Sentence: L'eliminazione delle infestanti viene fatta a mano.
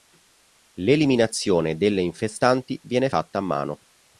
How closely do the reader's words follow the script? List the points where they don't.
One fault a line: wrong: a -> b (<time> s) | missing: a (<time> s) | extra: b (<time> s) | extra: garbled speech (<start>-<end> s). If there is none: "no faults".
no faults